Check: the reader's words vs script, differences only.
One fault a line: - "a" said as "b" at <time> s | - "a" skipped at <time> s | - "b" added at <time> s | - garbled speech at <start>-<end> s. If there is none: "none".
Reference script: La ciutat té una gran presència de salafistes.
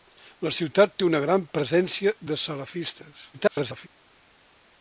- garbled speech at 3.3-3.9 s